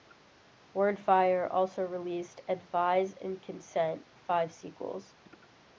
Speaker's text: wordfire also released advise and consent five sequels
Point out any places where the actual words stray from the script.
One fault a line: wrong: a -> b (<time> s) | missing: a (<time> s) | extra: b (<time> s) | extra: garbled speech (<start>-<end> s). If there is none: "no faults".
no faults